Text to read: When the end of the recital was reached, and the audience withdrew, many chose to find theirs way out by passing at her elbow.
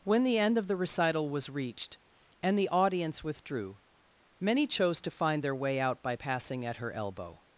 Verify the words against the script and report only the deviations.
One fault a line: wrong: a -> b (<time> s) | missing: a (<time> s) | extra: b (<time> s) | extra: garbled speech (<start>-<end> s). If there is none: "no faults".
wrong: theirs -> their (5.4 s)